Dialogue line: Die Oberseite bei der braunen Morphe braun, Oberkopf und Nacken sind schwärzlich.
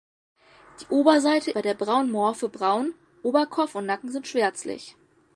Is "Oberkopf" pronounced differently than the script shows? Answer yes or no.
no